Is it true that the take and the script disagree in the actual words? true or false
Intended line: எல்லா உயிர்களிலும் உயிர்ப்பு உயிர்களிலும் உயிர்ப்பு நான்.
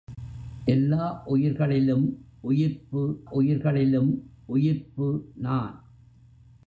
false